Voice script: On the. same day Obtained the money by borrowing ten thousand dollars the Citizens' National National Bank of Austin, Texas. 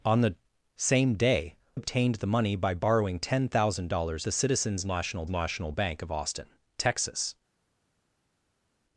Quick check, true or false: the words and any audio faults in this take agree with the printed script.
true